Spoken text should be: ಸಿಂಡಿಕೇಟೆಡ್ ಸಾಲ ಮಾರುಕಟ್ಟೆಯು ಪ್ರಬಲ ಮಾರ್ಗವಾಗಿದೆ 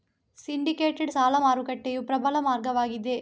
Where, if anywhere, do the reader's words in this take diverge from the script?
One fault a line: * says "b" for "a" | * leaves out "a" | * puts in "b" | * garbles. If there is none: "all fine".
all fine